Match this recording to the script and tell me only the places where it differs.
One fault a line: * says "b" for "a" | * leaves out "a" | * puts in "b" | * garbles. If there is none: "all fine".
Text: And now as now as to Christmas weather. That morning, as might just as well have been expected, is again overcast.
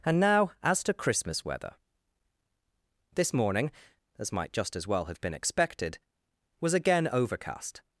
* leaves out "now as"
* says "This" for "That"
* says "was" for "is"